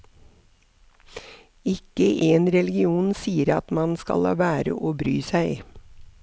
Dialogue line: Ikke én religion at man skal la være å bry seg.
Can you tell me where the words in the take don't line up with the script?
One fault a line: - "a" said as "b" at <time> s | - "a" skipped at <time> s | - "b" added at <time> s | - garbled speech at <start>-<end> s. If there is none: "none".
- "sier" added at 3.1 s